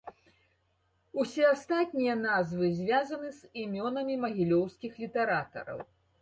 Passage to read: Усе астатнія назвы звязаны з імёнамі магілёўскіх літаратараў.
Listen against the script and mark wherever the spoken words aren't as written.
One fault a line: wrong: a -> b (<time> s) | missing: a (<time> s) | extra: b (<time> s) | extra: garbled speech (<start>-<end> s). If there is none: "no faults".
no faults